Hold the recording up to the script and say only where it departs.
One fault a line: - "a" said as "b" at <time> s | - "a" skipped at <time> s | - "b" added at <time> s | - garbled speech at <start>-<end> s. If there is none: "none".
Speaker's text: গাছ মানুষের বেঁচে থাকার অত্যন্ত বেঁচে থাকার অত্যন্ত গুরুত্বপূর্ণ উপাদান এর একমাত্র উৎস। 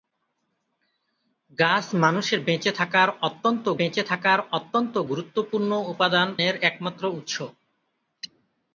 none